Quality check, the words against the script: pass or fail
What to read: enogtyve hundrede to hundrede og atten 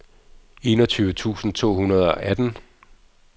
fail